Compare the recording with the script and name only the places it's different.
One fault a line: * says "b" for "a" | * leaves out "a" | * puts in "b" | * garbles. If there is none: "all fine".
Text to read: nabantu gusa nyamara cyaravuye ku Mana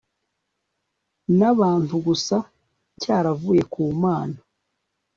* leaves out "nyamara"